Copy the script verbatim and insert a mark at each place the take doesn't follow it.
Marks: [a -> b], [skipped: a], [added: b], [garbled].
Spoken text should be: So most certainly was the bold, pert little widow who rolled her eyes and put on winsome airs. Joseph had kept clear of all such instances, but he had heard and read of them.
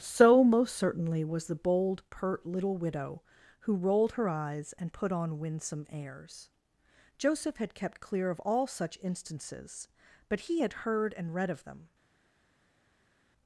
So most certainly was the bold, pert little widow who rolled her eyes and put on winsome airs. Joseph had kept clear of all such instances, but he had heard and read of them.